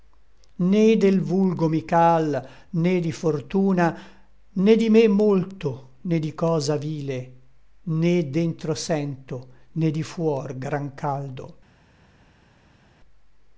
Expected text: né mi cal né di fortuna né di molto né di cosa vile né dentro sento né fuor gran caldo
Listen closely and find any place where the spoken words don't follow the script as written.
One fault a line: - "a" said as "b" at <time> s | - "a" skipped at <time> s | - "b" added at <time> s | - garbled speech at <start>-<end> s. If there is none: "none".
- "del vulgo" added at 1.0 s
- "me" added at 4.9 s
- "di" added at 9.9 s